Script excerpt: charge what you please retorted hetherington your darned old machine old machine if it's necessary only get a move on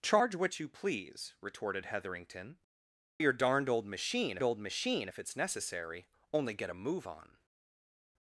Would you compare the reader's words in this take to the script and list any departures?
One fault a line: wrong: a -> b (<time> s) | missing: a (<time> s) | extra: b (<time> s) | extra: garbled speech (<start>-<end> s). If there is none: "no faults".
no faults